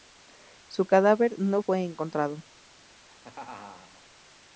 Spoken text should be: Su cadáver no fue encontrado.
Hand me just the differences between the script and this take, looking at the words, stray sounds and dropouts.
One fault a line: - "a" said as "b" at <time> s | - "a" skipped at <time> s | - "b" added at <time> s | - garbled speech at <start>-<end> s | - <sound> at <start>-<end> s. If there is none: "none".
- laugh at 2.9-4.0 s